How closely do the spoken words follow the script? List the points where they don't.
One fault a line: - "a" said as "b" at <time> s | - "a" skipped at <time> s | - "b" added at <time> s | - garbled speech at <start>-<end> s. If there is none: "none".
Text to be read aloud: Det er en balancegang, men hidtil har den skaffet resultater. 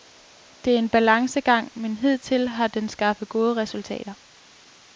- "gode" added at 3.3 s